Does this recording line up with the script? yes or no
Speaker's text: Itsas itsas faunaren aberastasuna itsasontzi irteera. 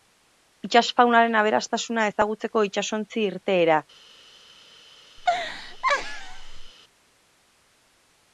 no